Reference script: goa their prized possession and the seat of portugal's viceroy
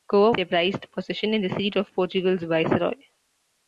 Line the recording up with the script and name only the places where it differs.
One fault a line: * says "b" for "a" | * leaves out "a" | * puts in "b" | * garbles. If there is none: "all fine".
all fine